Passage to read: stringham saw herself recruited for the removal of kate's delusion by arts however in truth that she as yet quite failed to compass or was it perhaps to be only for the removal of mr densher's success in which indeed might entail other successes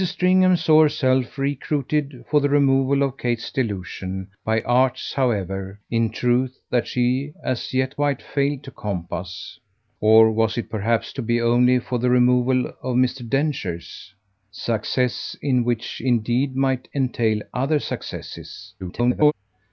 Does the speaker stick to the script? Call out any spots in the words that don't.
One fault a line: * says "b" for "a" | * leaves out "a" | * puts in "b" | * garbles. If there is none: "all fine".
* garbles